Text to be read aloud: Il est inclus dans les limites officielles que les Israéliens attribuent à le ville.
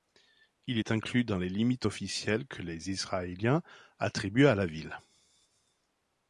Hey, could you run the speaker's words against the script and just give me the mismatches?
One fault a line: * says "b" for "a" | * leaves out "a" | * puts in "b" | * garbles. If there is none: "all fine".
* says "la" for "le"